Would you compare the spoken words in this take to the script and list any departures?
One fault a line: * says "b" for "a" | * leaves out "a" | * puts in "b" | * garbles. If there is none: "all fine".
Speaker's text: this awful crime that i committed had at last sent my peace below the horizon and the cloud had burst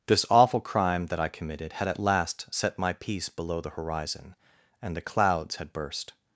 * says "set" for "sent"
* says "clouds" for "cloud"